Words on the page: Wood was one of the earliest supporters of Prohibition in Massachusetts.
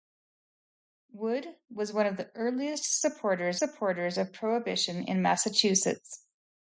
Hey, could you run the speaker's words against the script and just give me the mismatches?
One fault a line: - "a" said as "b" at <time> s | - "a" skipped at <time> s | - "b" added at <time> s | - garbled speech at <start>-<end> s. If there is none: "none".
- "supporters" added at 3.6 s